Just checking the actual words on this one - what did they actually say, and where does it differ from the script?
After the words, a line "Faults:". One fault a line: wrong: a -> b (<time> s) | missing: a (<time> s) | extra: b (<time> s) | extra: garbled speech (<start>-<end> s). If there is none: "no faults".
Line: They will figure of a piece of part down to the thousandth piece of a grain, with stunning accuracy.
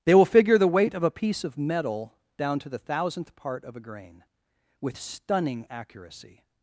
They will figure the weight of a piece of metal down to the thousandth part of a grain, with stunning accuracy.
Faults:
extra: the weight (0.6 s)
wrong: part -> metal (1.6 s)
wrong: piece -> part (3.4 s)